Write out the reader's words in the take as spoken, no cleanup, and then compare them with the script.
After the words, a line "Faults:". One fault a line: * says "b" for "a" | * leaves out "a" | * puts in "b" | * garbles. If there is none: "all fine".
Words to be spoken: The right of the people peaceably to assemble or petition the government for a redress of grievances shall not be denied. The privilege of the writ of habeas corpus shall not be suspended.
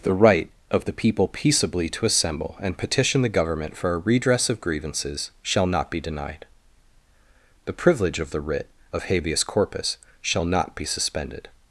The right of the people peaceably to assemble and petition the government for a redress of grievances shall not be denied. The privilege of the writ of habeas corpus shall not be suspended.
Faults:
* says "and" for "or"